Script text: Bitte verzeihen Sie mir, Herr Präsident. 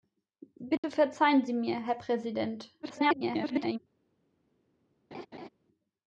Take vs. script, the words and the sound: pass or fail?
fail